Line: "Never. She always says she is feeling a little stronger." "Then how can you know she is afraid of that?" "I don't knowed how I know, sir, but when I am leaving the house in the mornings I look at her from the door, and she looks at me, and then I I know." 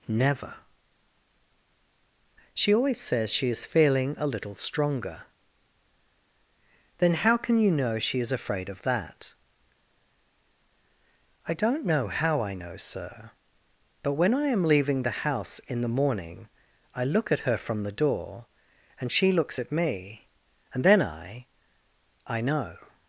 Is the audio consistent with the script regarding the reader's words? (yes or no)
no